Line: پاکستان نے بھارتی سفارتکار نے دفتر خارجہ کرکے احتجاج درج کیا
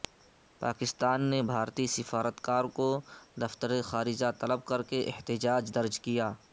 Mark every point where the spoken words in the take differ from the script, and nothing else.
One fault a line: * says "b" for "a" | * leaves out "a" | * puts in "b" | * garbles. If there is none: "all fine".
* says "کو" for "نے"
* puts in "طلب"